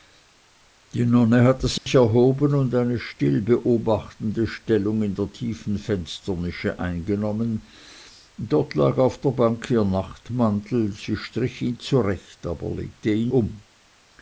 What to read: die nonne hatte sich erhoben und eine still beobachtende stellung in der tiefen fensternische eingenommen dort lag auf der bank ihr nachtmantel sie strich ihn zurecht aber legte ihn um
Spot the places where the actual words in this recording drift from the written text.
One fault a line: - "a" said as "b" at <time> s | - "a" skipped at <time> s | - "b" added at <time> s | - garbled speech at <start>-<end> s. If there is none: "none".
none